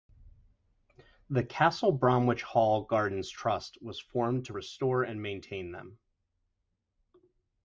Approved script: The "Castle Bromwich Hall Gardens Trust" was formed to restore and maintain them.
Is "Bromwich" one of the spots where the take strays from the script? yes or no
no